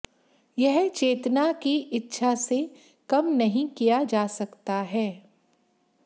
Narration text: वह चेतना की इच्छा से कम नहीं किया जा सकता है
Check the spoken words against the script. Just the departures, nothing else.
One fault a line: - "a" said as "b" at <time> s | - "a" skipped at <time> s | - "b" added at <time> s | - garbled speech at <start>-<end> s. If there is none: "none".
- "वह" said as "यह" at 0.6 s